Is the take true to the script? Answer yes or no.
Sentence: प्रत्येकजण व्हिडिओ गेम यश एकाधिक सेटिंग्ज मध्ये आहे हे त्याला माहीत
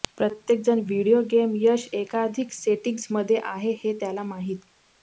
yes